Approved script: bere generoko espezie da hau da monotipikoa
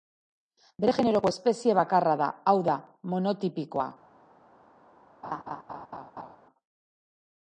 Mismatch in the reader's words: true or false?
true